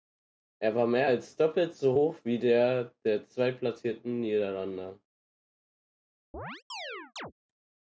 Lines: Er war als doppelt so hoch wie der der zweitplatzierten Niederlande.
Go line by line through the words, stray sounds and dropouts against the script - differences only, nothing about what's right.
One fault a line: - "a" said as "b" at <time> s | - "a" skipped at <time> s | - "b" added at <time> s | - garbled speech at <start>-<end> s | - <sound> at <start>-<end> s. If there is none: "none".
- "mehr" added at 0.9 s
- chirp at 6.3-7.3 s